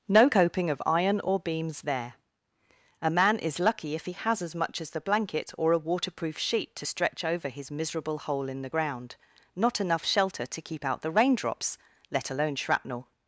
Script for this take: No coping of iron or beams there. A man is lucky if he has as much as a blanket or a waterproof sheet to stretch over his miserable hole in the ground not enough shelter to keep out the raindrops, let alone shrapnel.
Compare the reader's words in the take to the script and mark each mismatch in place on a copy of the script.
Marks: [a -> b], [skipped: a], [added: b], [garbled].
No coping of iron or beams there. A man is lucky if he has as much as [a -> the] blanket or a waterproof sheet to stretch over his miserable hole in the ground not enough shelter to keep out the raindrops, let alone shrapnel.